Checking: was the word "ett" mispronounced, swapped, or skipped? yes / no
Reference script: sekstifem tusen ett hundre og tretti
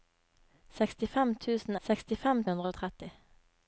yes